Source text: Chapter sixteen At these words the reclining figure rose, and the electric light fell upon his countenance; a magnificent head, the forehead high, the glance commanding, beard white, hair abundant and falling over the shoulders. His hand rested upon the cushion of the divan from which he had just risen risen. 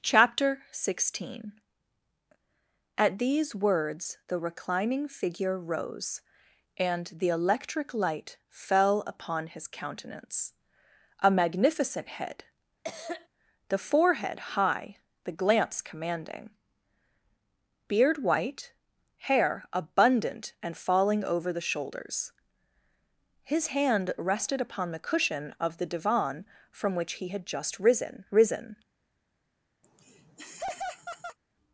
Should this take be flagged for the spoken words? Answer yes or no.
no